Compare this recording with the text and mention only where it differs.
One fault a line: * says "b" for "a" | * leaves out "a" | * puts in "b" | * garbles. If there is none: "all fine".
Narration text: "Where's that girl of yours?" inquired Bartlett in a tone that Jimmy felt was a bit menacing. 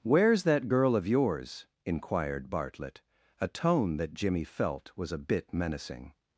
* leaves out "in"